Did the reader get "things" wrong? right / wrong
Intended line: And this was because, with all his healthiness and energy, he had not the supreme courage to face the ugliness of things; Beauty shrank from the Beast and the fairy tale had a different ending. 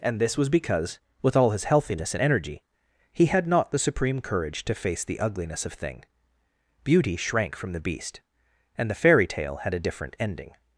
wrong